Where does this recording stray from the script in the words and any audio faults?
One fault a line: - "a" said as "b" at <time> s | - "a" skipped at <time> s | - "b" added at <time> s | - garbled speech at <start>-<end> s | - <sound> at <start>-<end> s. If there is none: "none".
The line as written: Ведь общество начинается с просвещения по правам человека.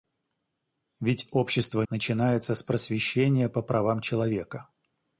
none